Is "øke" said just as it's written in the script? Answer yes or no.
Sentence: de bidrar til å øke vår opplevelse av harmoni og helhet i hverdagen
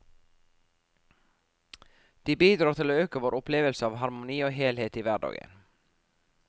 yes